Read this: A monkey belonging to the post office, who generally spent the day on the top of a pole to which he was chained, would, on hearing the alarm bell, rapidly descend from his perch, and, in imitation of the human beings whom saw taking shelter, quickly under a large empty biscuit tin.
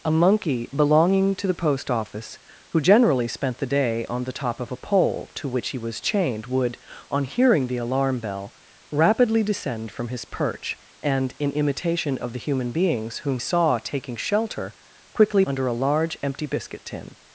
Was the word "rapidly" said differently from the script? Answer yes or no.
no